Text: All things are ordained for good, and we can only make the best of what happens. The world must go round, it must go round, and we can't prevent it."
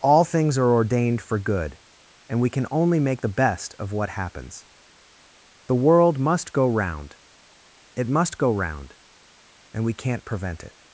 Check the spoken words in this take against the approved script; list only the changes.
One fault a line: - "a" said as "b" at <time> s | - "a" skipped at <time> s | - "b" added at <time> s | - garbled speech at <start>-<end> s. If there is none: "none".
none